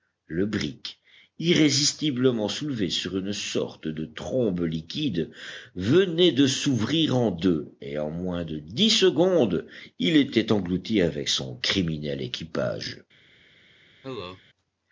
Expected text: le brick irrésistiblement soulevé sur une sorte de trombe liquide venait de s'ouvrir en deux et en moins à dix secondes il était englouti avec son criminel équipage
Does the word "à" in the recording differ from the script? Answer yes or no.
yes